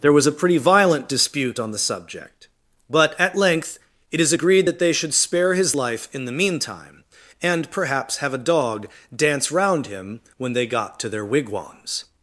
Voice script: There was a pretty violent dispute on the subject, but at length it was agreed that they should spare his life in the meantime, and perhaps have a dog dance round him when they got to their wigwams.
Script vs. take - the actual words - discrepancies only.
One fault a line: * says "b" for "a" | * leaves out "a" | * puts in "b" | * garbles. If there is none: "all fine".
* says "is" for "was"